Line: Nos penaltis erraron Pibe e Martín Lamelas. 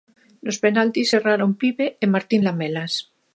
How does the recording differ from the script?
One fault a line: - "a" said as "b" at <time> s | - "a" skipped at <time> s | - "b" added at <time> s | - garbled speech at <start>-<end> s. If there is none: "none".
none